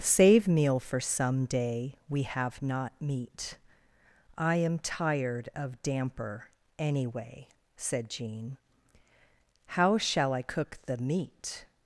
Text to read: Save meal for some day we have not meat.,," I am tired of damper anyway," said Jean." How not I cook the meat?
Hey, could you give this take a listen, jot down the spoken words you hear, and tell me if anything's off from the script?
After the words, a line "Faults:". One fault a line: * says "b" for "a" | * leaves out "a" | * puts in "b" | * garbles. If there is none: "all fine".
Save meal for some day we have not meat.,," I am tired of damper anyway," said Jean." How shall I cook the meat?
Faults:
* says "shall" for "not"